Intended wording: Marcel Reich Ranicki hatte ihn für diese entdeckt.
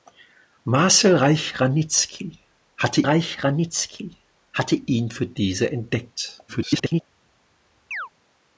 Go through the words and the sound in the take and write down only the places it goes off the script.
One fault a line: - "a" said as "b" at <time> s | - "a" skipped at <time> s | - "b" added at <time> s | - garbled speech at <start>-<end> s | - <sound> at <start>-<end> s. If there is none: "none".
- "Reich Ranicki hatte" added at 3.0 s
- garbled speech at 6.5-7.0 s
- chirp at 7.9-8.1 s